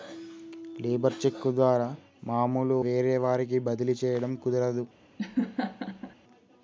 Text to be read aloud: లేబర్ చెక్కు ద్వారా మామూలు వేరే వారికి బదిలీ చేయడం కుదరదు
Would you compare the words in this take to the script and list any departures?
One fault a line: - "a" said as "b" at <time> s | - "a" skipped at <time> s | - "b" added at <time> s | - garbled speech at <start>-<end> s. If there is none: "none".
none